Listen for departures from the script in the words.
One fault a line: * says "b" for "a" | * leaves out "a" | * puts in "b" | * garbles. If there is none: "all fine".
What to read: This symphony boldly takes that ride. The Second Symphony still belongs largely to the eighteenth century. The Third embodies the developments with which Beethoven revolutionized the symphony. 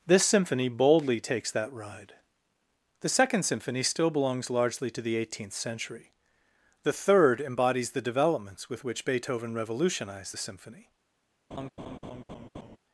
all fine